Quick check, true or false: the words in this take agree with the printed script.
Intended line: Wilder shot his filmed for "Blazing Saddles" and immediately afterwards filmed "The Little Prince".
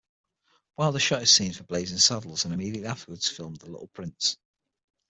false